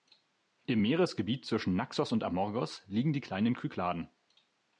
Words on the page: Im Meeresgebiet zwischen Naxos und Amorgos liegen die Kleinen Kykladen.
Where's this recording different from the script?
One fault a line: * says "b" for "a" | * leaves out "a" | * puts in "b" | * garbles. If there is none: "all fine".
all fine